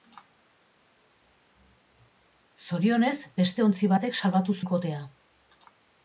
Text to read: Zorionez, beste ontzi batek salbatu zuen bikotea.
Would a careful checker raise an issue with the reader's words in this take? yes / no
yes